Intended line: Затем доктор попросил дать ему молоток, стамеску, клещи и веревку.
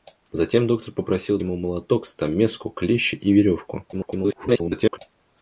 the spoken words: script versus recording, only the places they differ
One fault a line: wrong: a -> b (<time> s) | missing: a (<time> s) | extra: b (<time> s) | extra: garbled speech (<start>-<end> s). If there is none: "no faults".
missing: дать (1.4 s)
extra: garbled speech (3.9-5.0 s)